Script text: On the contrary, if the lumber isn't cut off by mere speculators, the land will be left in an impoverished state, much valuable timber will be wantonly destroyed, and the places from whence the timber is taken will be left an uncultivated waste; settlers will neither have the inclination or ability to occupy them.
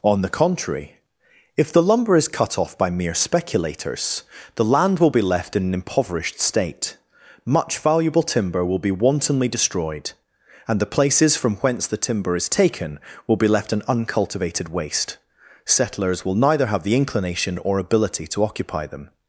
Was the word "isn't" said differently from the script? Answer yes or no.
yes